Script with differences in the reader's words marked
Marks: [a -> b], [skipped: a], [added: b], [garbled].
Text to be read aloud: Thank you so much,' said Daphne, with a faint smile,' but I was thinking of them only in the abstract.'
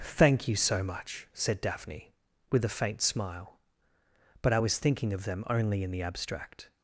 Thank you so much,' said Daphne, with a faint smile,' but I was thinking of them only in the abstract.'